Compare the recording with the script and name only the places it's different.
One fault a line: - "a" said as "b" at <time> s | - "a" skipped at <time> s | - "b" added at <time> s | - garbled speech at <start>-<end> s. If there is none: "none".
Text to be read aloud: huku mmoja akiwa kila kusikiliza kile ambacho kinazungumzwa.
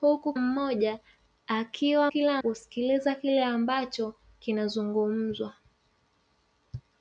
none